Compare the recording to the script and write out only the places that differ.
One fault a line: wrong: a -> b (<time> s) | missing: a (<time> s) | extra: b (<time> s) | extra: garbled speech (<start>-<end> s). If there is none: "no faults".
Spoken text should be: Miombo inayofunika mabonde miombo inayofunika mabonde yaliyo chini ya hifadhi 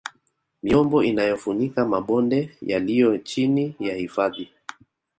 missing: miombo inayofunika mabonde (2.6 s)